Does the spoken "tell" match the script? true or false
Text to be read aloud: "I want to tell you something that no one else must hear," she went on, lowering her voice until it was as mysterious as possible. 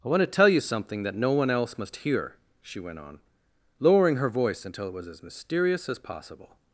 true